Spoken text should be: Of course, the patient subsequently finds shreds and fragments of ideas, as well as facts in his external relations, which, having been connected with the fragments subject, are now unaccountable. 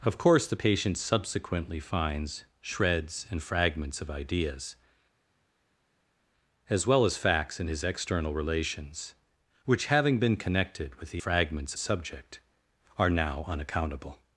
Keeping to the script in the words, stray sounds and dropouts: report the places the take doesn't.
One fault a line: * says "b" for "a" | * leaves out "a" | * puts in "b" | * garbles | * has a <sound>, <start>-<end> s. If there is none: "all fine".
all fine